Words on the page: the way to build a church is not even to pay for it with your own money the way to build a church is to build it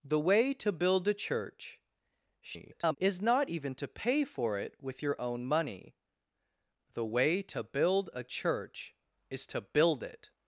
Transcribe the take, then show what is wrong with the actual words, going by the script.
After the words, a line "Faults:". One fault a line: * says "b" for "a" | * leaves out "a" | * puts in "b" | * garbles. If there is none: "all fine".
the way to build a church [garbled] is not even to pay for it with your own money the way to build a church is to build it
Faults:
* garbles